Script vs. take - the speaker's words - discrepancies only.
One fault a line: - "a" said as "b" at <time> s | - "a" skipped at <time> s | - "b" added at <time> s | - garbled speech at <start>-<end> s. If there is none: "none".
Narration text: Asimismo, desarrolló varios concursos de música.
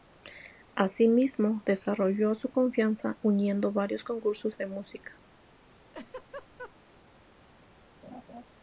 - "su confianza uniendo" added at 2.3 s